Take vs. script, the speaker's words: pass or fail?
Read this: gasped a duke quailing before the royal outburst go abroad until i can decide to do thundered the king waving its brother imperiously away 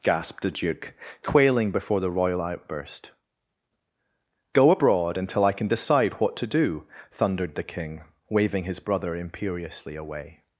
fail